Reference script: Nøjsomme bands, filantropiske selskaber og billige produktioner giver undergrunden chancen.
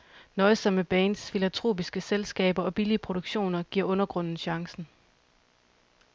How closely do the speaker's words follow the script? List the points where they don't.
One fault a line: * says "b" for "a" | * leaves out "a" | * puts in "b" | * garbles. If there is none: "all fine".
all fine